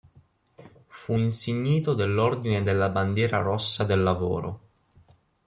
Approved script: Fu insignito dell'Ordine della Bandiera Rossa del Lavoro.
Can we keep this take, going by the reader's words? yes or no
yes